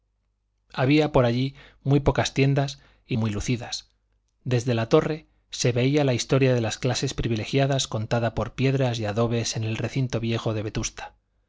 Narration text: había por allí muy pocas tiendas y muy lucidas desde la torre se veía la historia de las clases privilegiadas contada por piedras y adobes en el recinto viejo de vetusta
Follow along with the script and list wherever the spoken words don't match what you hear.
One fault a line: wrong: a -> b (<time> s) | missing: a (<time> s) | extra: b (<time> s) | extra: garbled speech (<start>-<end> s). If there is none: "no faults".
no faults